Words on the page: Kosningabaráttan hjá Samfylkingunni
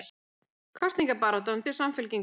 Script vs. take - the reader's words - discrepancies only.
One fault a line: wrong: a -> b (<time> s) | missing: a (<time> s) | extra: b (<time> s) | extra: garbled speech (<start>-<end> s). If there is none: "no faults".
no faults